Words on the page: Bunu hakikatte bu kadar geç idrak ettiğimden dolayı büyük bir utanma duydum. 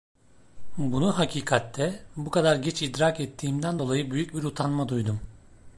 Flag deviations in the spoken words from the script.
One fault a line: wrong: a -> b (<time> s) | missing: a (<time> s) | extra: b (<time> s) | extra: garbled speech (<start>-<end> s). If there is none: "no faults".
no faults